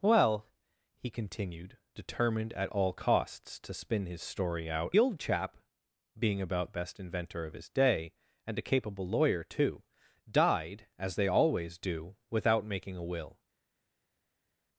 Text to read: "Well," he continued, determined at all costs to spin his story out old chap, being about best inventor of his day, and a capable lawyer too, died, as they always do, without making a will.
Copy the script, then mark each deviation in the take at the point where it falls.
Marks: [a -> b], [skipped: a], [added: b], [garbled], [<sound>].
"Well," he continued, determined at all costs to spin his story out old chap, being about best inventor of his day, and a capable lawyer too, died, as they always do, without making a will.